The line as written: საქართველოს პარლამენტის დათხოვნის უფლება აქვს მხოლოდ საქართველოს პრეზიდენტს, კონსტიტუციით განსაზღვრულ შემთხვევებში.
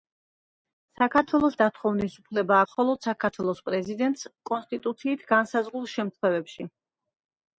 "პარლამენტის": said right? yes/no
no